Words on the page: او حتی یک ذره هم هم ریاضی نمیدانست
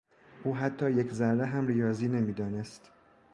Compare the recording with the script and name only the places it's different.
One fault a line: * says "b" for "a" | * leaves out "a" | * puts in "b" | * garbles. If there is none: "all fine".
* leaves out "هم"